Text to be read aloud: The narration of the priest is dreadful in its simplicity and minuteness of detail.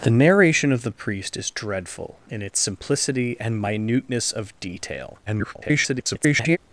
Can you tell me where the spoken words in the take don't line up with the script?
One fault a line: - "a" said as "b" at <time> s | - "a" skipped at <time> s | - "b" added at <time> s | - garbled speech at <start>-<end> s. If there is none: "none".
- garbled speech at 5.3-6.6 s